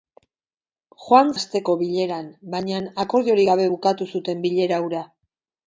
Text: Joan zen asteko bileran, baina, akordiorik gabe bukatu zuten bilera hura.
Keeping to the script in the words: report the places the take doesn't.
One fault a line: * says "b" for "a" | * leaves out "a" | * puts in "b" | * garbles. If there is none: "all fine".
* leaves out "zen"